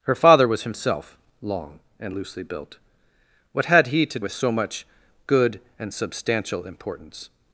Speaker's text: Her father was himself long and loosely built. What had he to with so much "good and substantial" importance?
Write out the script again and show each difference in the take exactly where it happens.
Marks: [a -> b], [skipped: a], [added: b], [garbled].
Her father was himself long and loosely built. What had he to with so much "good and substantial" importance?